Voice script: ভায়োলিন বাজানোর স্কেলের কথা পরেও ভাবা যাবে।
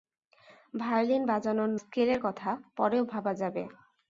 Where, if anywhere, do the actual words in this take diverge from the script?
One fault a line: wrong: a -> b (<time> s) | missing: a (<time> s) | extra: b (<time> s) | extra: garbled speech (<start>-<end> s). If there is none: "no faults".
no faults